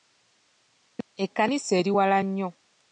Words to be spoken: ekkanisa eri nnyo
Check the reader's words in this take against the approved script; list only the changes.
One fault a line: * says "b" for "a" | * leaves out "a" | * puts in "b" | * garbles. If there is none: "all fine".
* puts in "wala"